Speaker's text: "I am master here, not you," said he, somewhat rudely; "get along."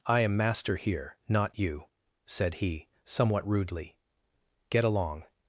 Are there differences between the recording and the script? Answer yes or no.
no